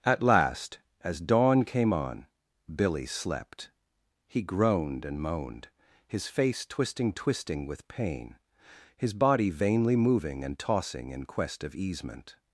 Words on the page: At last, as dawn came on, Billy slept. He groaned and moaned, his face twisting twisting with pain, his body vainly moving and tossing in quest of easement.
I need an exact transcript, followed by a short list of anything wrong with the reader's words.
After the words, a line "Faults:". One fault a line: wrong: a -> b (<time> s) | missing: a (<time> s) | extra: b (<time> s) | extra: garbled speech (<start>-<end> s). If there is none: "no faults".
At last, as dawn came on, Billy slept. He groaned and moaned, his face twisting twisting with pain, his body vainly moving and tossing in quest of easement.
Faults:
no faults